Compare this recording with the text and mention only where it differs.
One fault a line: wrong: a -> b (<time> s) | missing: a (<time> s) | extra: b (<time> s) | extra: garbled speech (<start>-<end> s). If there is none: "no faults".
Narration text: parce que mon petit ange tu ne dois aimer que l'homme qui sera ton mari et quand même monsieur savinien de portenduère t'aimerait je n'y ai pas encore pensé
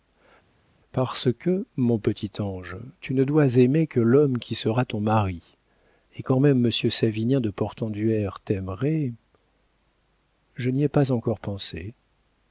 no faults